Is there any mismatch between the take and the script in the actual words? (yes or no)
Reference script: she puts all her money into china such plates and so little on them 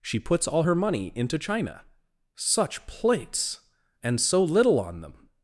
no